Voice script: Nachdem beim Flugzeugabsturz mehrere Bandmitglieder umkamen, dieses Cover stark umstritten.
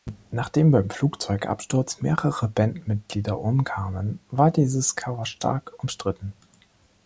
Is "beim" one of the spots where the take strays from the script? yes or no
no